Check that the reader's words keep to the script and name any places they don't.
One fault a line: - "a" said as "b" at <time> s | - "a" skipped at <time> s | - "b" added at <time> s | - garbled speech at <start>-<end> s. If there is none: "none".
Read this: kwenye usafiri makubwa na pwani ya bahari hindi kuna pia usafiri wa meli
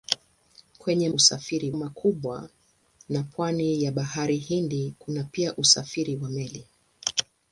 none